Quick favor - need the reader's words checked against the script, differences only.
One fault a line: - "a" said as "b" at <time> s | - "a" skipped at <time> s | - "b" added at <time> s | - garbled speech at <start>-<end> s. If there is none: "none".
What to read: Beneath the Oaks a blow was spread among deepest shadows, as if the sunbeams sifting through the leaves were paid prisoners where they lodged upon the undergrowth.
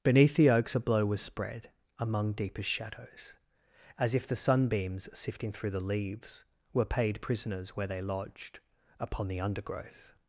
none